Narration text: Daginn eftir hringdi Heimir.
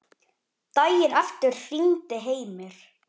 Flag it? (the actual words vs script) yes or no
no